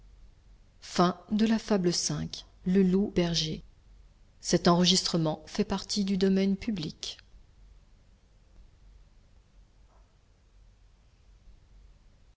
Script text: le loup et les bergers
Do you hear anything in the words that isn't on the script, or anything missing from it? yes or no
yes